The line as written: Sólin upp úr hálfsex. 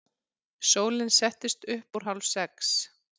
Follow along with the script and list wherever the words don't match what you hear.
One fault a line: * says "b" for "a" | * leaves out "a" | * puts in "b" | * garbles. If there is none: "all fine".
* puts in "settist"